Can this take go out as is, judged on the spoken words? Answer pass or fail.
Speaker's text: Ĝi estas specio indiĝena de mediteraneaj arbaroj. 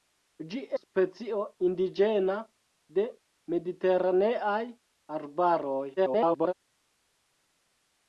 fail